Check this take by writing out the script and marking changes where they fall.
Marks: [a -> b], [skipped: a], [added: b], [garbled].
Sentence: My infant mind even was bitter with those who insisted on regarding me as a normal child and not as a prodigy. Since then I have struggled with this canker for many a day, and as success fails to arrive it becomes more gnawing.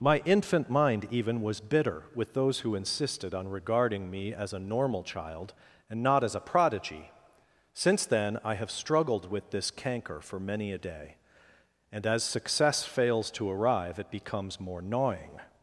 My infant mind even was bitter with those who insisted on regarding me as a normal child and not as a prodigy. Since then I have struggled with this canker for many a day, and as success fails to arrive it becomes more gnawing.